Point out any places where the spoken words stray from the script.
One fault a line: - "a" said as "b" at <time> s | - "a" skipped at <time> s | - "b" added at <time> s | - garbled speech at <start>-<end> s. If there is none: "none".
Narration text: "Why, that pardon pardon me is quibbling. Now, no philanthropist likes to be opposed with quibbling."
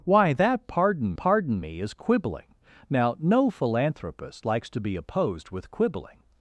none